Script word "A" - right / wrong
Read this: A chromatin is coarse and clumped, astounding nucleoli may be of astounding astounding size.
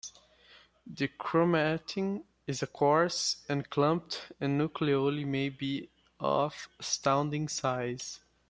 wrong